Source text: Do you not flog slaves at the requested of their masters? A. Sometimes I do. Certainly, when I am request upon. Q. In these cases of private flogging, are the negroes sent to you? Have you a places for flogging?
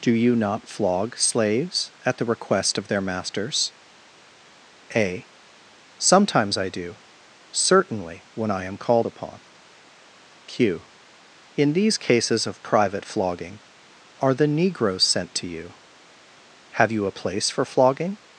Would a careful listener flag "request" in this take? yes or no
yes